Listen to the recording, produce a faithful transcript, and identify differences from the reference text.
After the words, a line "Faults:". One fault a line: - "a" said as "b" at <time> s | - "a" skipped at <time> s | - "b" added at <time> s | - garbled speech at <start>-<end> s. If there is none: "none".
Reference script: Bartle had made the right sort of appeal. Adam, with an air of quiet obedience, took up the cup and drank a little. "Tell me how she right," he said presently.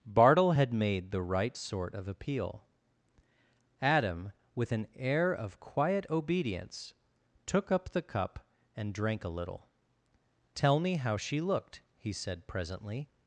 Bartle had made the right sort of appeal. Adam, with an air of quiet obedience, took up the cup and drank a little. "Tell me how she looked," he said presently.
Faults:
- "right" said as "looked" at 11.4 s